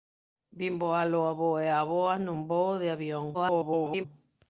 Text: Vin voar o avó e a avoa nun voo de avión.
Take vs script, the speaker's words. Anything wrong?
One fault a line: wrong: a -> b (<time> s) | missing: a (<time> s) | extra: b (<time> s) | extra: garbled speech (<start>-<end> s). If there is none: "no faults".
extra: garbled speech (3.3-4.1 s)